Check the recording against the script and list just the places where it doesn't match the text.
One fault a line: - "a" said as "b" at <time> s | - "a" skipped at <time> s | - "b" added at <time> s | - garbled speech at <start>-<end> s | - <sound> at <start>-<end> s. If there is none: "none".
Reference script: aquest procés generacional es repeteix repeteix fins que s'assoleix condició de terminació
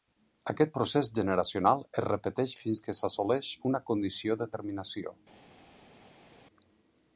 - "repeteix" skipped at 2.6 s
- "una" added at 3.7 s